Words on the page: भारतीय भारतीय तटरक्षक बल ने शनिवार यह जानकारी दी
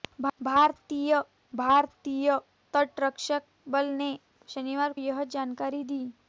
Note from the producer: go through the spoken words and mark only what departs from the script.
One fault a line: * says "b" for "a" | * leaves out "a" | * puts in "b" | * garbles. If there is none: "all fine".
all fine